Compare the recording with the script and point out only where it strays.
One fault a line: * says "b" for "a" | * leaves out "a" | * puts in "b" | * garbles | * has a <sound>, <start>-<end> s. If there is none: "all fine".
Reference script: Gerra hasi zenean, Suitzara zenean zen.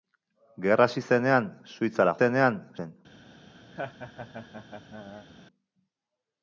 * has a laugh, 3.7-5.3 s